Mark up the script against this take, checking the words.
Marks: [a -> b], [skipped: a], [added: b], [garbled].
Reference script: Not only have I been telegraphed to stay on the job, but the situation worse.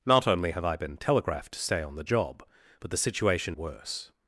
Not only have I been telegraphed to stay on the job, but the situation worse.